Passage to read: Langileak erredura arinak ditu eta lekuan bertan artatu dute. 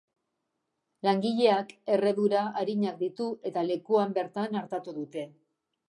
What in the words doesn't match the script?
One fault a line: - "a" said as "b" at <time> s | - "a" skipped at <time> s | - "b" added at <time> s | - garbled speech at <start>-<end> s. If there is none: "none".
none